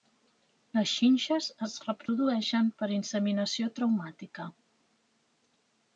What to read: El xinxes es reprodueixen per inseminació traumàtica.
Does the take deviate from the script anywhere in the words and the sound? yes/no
yes